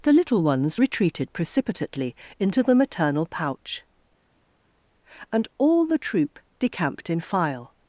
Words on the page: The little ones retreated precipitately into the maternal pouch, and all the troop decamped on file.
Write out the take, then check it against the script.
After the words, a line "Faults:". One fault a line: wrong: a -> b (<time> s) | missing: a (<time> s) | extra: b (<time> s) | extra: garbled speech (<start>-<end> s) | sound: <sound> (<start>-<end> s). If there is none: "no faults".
The little ones retreated precipitately into the maternal pouch, and all the troop decamped in file.
Faults:
wrong: on -> in (7.1 s)